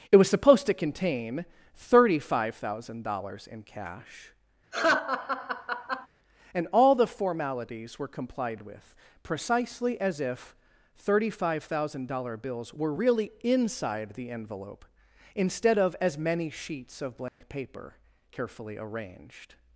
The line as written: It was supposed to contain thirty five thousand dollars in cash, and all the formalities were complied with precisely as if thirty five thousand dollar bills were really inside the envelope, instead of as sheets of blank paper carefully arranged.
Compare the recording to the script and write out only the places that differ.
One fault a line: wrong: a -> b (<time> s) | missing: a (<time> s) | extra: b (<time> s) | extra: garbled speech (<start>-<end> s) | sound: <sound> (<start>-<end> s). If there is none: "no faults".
sound: laugh (4.7-6.1 s)
extra: many (16.2 s)
sound: dropout (17.3-17.4 s)